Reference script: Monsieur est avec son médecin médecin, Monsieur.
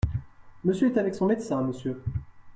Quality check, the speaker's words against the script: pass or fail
fail